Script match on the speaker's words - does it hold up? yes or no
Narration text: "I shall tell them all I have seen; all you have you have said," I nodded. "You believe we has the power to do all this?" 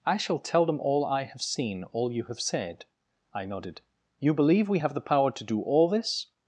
no